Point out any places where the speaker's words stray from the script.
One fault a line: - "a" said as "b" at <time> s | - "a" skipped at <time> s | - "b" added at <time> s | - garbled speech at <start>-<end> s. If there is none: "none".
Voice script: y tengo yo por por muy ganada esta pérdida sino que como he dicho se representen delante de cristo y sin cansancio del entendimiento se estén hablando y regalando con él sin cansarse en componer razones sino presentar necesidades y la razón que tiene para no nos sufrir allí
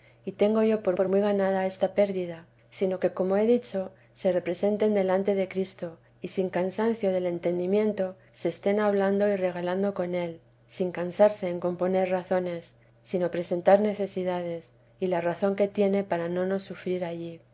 none